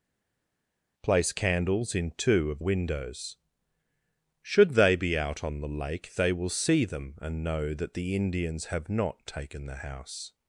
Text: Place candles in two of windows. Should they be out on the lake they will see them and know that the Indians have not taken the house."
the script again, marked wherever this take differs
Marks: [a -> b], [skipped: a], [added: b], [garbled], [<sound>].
Place candles in two of windows. Should they be out on the lake they will see them and know that the Indians have not taken the house."